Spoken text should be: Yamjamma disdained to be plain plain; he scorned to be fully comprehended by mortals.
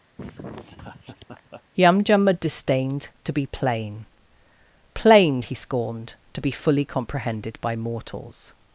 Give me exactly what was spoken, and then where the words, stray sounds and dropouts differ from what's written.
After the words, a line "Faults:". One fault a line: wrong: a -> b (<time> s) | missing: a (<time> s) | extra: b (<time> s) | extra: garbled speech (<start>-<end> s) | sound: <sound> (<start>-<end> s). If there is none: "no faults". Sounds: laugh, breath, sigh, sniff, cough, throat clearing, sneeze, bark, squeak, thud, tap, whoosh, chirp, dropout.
Yamjamma disdained to be plain plain; he scorned to be fully comprehended by mortals.
Faults:
sound: laugh (0.2-1.6 s)